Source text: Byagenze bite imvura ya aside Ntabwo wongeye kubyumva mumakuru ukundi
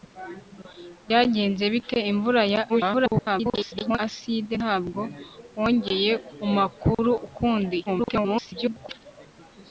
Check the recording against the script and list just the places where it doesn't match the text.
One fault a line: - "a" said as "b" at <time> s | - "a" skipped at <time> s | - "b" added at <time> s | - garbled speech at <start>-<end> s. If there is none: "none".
- garbled speech at 2.7-4.0 s
- "kubyumva" skipped at 6.1 s
- garbled speech at 7.9-9.0 s